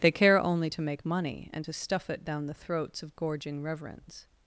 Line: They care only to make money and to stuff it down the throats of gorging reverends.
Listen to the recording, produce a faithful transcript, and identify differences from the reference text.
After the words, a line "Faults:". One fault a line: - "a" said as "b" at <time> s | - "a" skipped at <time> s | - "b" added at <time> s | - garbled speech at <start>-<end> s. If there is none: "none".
They care only to make money and to stuff it down the throats of gorging reverends.
Faults:
none